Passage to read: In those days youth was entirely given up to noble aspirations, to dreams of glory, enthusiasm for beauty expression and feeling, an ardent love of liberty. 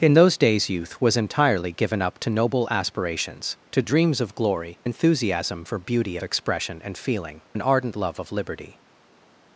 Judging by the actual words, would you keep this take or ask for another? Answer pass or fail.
pass